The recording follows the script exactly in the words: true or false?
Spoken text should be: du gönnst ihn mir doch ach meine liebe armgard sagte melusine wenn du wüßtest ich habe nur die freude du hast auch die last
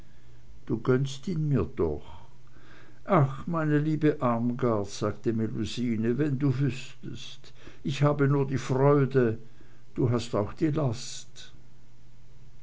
true